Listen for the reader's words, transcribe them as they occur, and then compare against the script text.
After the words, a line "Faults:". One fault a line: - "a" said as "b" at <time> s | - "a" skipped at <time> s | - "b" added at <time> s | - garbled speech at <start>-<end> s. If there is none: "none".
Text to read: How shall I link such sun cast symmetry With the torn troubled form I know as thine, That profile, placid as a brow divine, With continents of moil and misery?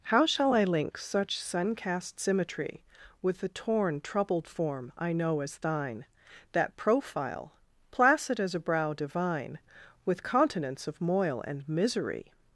How shall I link such sun cast symmetry With the torn troubled form I know as thine, That profile, placid as a brow divine, With continents of moil and misery?
Faults:
none